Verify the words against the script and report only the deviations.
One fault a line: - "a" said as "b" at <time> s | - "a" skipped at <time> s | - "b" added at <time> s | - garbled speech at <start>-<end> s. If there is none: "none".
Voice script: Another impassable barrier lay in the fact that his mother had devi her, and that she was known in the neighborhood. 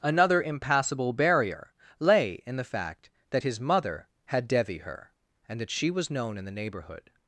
none